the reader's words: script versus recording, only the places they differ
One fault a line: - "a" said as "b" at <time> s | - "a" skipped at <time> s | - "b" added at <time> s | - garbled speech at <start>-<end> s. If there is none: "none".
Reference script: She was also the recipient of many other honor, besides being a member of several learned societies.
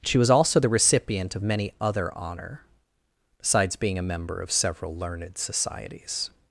none